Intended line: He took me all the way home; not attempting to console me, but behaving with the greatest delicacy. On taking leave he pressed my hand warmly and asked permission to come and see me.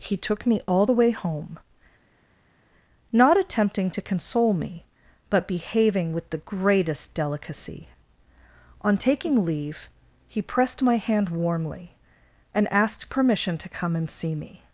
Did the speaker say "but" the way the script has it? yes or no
yes